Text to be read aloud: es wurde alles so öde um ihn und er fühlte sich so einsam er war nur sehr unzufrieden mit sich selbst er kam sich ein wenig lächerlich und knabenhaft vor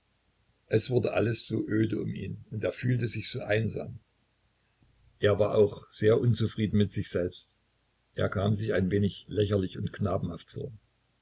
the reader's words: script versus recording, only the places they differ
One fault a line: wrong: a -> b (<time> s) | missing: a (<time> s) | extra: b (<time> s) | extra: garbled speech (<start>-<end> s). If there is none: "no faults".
wrong: nur -> auch (5.5 s)